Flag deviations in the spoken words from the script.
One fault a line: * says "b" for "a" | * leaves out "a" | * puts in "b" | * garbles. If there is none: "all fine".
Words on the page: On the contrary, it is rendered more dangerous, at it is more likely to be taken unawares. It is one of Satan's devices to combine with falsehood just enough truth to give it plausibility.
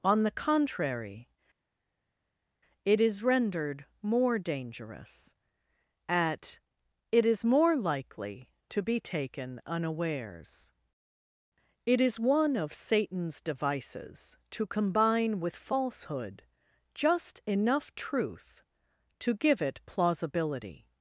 all fine